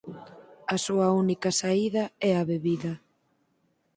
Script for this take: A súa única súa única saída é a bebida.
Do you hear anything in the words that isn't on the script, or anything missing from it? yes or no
yes